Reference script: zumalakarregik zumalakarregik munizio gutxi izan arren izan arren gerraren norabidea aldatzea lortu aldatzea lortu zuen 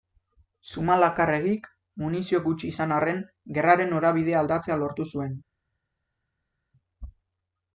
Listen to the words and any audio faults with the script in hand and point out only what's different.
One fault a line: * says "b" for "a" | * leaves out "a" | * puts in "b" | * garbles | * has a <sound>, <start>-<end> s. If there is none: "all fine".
* leaves out "zumalakarregik"
* leaves out "izan arren"
* leaves out "aldatzea lortu"